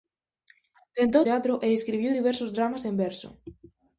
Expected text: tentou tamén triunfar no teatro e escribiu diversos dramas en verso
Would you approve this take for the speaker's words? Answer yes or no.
no